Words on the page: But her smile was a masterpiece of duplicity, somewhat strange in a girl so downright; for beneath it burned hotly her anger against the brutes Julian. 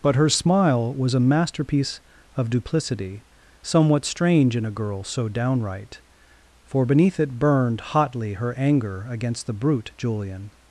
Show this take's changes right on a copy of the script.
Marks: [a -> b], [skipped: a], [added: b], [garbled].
But her smile was a masterpiece of duplicity, somewhat strange in a girl so downright; for beneath it burned hotly her anger against the [brutes -> brute] Julian.